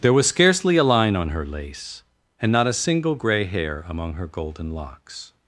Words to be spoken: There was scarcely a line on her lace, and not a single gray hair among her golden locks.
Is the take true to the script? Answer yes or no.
yes